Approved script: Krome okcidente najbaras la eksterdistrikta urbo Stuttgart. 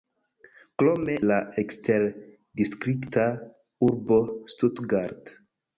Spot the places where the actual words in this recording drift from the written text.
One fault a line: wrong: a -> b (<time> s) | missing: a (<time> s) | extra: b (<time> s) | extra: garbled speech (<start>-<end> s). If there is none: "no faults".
missing: okcidente najbaras (1.2 s)